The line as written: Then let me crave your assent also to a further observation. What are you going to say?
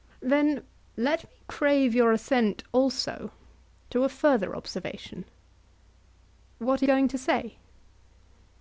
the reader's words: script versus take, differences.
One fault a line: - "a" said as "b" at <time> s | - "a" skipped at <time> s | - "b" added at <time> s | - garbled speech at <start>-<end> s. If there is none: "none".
- "you" skipped at 6.9 s